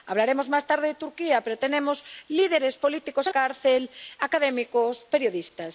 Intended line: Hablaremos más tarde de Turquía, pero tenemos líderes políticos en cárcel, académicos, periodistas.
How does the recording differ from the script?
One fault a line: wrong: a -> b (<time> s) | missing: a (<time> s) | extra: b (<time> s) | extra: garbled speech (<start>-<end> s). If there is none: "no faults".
no faults